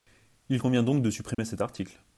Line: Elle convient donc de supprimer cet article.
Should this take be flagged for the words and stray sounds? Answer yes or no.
yes